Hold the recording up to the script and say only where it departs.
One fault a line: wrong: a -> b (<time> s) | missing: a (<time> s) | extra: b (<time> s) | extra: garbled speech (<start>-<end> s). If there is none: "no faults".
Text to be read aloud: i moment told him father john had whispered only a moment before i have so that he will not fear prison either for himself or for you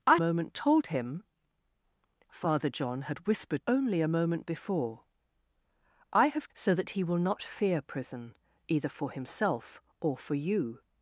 no faults